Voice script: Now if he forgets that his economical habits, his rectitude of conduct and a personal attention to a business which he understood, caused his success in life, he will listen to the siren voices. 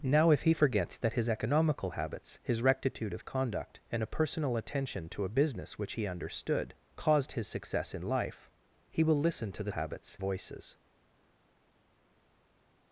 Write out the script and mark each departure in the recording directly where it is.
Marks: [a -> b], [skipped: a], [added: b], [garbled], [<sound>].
Now if he forgets that his economical habits, his rectitude of conduct and a personal attention to a business which he understood, caused his success in life, he will listen to the [siren -> habits] voices.